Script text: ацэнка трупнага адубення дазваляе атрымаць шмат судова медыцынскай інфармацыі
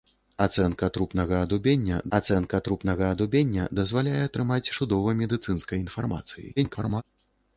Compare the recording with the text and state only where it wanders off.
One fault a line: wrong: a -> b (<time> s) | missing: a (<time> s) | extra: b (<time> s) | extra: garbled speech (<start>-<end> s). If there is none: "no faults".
extra: ацэнка трупнага адубення (2.2 s)
missing: шмат (4.7 s)
extra: garbled speech (6.6-7.0 s)